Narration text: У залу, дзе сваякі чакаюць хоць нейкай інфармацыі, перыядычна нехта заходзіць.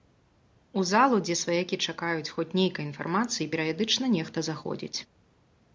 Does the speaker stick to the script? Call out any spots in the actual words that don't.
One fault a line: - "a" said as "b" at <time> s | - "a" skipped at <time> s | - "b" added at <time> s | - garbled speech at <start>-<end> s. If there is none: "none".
none